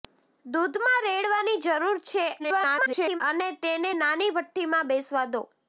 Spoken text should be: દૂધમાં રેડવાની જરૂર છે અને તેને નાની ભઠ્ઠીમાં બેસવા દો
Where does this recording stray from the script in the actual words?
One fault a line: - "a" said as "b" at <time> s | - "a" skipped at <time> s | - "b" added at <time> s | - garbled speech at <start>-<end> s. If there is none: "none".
- garbled speech at 2.4-3.2 s